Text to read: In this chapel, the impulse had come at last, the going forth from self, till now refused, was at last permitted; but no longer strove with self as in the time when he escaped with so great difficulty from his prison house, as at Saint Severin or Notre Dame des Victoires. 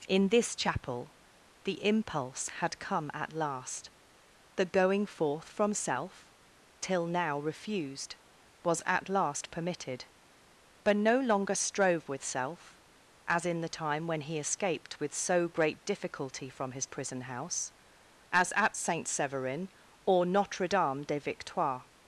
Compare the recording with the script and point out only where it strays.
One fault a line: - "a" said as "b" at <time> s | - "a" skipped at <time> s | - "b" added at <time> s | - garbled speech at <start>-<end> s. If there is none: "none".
none